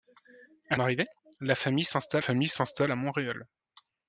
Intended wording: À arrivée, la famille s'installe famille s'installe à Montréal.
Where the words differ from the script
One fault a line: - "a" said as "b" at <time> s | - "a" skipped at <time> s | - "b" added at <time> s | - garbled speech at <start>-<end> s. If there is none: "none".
none